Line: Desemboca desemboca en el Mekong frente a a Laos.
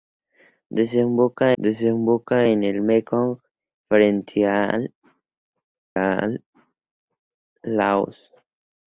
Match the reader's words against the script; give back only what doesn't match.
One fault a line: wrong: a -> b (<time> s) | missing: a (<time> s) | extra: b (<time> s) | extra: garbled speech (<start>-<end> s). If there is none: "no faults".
no faults